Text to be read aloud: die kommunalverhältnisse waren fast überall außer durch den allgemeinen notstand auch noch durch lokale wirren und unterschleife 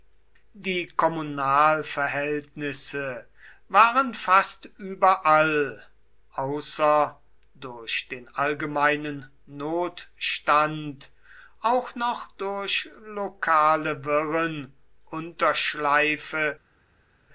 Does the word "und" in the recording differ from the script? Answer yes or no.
yes